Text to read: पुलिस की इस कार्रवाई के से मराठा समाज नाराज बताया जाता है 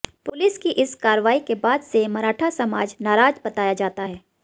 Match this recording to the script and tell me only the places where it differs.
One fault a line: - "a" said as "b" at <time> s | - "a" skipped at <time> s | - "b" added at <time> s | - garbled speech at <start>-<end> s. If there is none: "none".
- "बाद" added at 1.6 s